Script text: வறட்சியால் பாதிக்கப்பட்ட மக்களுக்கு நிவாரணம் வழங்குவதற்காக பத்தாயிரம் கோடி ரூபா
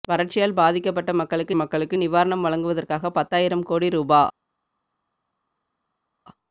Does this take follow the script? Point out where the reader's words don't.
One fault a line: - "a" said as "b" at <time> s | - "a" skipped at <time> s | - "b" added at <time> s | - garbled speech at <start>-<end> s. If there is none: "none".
- "மக்களுக்கு" added at 1.5 s